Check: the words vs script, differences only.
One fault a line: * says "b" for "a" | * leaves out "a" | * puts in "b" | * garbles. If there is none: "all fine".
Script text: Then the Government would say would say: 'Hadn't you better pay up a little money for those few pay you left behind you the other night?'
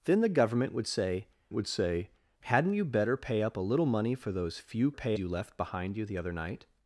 all fine